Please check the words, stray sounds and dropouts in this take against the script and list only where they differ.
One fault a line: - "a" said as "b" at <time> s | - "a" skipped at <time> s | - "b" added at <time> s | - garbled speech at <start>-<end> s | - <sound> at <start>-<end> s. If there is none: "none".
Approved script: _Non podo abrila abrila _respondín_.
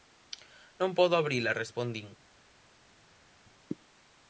- "abrila" skipped at 1.6 s